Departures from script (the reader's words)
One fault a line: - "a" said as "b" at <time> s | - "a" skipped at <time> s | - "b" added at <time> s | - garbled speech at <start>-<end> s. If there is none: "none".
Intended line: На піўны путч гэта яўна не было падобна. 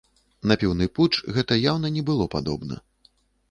none